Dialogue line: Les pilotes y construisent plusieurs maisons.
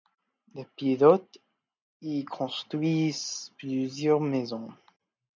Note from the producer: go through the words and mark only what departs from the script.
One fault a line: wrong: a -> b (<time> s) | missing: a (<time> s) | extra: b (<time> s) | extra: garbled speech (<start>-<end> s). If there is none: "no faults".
no faults